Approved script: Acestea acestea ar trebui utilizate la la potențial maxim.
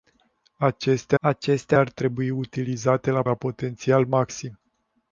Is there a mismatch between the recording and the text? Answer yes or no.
no